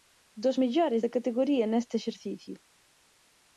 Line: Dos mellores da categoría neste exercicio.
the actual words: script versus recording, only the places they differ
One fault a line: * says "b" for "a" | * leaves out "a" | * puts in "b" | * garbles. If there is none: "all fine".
all fine